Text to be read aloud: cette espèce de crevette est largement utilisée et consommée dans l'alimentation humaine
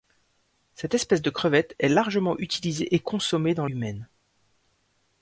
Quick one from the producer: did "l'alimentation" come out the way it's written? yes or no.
no